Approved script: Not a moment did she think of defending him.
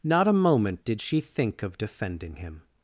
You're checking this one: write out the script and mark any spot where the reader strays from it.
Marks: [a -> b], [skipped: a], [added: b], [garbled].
Not a moment did she think of defending him.